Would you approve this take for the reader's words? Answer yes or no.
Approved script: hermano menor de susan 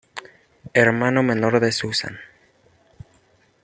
yes